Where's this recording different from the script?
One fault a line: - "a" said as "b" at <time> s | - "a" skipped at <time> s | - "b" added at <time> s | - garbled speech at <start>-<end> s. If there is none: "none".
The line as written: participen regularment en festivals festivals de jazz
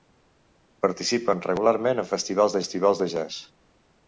none